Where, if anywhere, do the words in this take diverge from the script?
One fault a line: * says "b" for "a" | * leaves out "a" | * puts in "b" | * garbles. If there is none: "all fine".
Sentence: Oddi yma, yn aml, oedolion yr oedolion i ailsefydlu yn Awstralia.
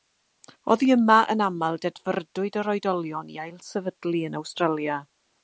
* says "dedfrydwyd" for "oedolion"